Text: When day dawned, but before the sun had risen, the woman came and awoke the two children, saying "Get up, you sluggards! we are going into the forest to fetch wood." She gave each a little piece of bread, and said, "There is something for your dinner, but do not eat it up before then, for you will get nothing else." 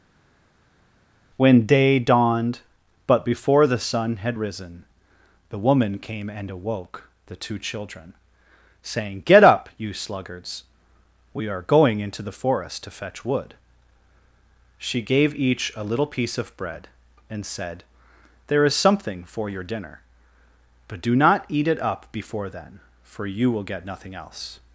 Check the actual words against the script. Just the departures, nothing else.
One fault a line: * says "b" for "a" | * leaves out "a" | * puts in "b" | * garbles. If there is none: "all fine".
all fine